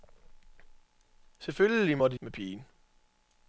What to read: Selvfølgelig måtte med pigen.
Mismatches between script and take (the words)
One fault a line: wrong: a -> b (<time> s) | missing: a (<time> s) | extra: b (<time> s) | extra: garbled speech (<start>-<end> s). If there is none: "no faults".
no faults